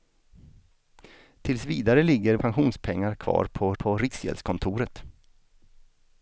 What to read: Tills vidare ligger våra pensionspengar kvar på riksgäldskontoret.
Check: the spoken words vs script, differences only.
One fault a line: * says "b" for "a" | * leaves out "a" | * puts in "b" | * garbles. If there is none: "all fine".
* leaves out "våra"
* puts in "på"